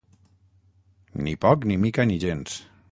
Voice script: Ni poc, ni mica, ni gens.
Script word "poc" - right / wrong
right